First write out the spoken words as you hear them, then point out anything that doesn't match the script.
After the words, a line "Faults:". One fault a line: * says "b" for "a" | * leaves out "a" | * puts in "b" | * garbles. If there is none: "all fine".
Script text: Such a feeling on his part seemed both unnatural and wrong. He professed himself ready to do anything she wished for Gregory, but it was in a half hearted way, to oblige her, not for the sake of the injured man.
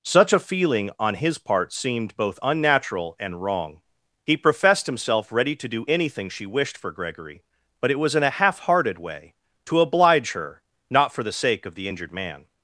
Such a feeling on his part seemed both unnatural and wrong. He professed himself ready to do anything she wished for Gregory, but it was in a half hearted way, to oblige her, not for the sake of the injured man.
Faults:
all fine